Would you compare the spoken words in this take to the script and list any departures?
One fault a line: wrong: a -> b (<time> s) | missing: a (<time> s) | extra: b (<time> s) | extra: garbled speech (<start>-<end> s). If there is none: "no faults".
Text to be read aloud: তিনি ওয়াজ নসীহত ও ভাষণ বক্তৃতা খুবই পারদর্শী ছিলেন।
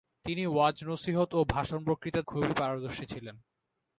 no faults